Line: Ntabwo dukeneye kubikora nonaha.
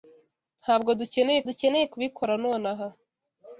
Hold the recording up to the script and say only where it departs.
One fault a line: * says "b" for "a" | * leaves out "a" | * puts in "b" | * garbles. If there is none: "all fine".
* puts in "dukeneye"